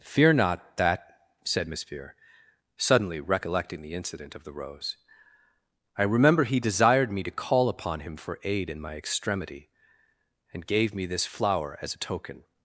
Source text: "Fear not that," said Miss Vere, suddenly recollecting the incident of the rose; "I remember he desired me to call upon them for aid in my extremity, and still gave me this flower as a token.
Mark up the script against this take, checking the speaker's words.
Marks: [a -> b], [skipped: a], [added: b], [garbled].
"Fear not that," said Miss Vere, suddenly recollecting the incident of the rose; "I remember he desired me to call upon [them -> him] for aid in my extremity, and [skipped: still] gave me this flower as a token.